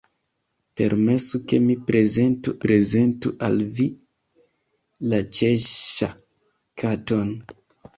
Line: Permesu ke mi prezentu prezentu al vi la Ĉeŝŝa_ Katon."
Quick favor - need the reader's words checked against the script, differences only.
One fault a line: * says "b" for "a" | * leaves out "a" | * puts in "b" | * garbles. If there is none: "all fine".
all fine